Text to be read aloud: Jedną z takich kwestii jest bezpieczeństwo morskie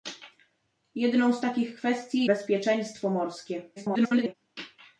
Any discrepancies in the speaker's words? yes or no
yes